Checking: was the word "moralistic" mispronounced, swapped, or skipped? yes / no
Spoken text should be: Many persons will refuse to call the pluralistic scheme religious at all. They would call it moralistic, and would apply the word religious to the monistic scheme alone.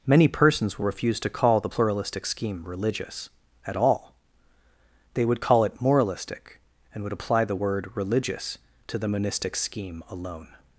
no